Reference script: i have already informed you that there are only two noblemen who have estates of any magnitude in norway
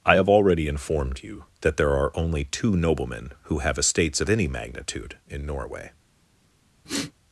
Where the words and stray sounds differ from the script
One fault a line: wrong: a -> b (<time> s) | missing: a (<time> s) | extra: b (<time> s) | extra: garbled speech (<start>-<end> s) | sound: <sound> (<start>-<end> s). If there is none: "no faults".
sound: sniff (6.9-7.1 s)